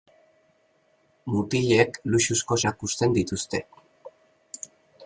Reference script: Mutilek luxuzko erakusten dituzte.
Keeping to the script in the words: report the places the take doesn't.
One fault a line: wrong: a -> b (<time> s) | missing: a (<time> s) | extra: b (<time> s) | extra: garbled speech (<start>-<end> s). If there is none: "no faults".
no faults